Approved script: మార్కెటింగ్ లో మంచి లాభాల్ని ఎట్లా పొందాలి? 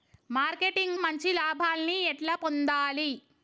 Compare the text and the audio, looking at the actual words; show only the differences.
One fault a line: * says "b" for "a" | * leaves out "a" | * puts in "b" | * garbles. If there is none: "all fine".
* leaves out "లో"